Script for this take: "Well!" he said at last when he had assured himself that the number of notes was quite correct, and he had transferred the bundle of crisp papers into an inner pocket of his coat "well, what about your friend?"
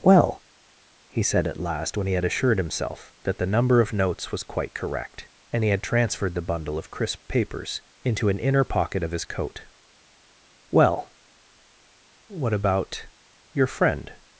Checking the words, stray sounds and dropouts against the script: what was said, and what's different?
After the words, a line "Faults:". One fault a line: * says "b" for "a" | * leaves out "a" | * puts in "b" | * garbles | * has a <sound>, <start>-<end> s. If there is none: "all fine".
"Well!" he said at last when he had assured himself that the number of notes was quite correct, and he had transferred the bundle of crisp papers into an inner pocket of his coat "well, what about your friend?"
Faults:
all fine